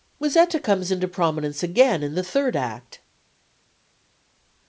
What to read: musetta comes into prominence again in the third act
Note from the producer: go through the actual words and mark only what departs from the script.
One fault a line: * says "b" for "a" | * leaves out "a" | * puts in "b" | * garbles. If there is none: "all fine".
all fine